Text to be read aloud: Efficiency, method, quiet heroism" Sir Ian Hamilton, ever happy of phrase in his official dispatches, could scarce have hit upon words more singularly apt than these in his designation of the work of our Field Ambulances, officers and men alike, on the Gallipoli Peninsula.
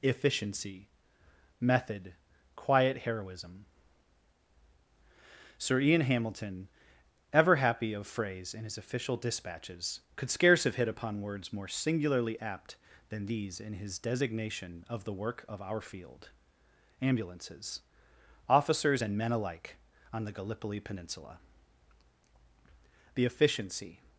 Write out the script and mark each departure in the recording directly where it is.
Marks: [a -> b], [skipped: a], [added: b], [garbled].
Efficiency, method, quiet heroism" Sir Ian Hamilton, ever happy of phrase in his official dispatches, could scarce have hit upon words more singularly apt than these in his designation of the work of our Field Ambulances, officers and men alike, on the Gallipoli Peninsula. [added: The efficiency]